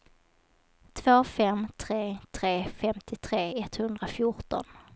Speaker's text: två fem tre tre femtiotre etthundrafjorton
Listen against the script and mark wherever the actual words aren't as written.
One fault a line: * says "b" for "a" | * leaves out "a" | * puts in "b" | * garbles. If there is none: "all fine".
all fine